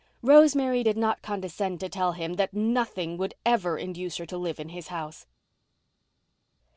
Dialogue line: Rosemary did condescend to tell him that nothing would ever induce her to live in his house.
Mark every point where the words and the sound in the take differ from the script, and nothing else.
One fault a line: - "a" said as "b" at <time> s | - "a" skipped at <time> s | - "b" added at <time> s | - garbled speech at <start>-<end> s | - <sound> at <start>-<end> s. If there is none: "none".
- "not" added at 1.0 s